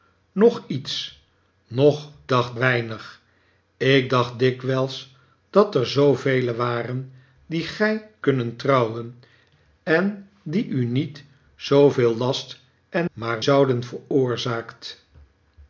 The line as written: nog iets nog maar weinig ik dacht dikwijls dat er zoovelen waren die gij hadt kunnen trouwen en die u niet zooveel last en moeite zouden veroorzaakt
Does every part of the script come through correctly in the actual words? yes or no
no